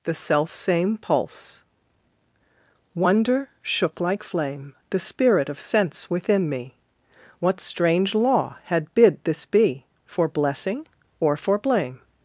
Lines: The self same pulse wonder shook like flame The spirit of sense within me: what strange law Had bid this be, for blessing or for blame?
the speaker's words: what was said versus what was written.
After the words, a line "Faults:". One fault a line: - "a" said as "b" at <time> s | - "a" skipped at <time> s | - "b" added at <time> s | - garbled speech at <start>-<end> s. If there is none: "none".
The self same pulse wonder shook like flame The spirit of sense within me: what strange law Had bid this be, for blessing or for blame?
Faults:
none